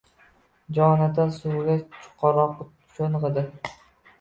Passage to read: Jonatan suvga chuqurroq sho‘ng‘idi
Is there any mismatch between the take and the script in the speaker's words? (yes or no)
no